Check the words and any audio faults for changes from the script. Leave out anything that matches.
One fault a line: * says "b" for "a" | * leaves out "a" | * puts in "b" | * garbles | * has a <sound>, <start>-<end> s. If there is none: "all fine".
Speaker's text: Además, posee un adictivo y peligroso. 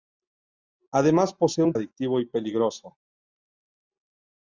all fine